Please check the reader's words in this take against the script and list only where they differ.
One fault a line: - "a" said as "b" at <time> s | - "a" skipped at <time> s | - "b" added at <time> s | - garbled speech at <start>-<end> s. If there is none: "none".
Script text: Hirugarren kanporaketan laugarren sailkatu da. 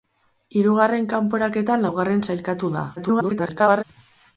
- garbled speech at 3.0-3.8 s